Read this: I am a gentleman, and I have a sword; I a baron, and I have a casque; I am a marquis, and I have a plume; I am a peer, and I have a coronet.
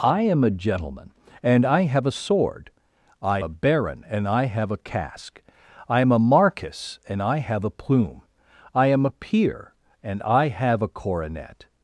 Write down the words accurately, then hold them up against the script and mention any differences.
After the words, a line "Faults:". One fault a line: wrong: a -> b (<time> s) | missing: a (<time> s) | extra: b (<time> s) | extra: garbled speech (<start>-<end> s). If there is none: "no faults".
I am a gentleman, and I have a sword; I a baron, and I have a casque; I am a marquis, and I have a plume; I am a peer, and I have a coronet.
Faults:
no faults